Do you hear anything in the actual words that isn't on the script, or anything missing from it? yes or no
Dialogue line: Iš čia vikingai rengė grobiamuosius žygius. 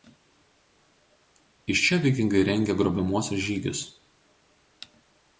no